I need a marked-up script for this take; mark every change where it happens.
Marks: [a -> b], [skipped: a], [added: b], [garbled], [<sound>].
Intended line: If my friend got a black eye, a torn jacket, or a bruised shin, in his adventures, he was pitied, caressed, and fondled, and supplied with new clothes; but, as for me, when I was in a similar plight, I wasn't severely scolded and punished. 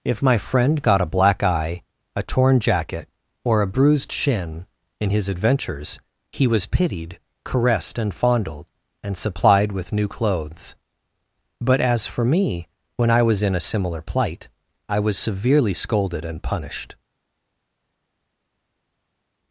If my friend got a black eye, a torn jacket, or a bruised shin, in his adventures, he was pitied, caressed, and fondled, and supplied with new clothes; but, as for me, when I was in a similar plight, I [wasn't -> was] severely scolded and punished.